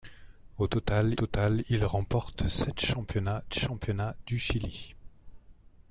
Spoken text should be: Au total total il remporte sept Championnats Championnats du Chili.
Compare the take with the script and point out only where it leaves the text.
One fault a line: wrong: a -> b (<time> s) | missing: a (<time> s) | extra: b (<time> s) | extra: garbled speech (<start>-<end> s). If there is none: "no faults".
no faults